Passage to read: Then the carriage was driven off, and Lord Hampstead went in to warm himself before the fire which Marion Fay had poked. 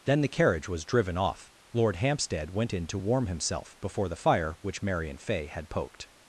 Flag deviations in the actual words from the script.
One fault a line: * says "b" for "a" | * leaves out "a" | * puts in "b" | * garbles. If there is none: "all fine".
* leaves out "and"